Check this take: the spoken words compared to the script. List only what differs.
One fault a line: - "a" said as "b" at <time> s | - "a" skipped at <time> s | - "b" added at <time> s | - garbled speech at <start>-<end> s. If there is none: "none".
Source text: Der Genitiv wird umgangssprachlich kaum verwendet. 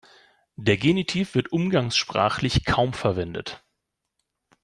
none